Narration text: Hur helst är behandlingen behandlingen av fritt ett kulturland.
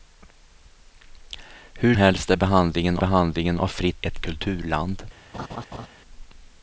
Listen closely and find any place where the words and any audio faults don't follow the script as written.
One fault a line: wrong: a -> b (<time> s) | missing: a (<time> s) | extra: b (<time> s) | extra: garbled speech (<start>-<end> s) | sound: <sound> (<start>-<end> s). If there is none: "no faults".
sound: laugh (5.3-5.9 s)